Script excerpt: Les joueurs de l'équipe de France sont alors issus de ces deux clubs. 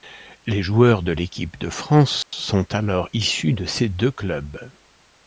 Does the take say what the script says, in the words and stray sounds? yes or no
no